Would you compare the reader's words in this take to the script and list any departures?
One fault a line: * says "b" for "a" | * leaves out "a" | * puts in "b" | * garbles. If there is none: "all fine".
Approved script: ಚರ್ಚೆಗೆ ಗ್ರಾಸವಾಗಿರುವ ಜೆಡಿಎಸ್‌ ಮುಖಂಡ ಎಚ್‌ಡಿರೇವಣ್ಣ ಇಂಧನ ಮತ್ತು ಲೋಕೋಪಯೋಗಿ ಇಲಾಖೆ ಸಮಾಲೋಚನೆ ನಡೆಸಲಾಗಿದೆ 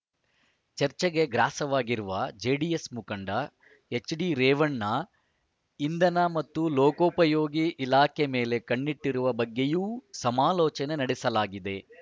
* puts in "ಮೇಲೆ ಕಣ್ಣಿಟ್ಟಿರುವ ಬಗ್ಗೆಯೂ"